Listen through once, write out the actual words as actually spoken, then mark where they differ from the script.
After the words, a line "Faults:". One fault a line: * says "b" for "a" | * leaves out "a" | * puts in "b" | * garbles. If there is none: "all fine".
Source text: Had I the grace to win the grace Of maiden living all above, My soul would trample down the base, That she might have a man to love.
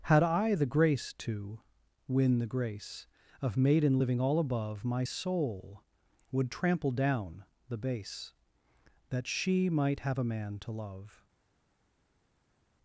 Had I the grace to win the grace Of maiden living all above, My soul would trample down the base, That she might have a man to love.
Faults:
all fine